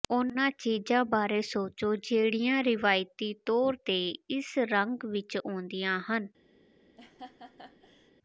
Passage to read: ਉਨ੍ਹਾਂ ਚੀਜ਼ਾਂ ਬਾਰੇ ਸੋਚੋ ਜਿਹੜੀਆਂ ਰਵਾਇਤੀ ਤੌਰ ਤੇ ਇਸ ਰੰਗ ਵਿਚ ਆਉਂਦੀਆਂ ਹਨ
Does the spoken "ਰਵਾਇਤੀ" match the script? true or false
true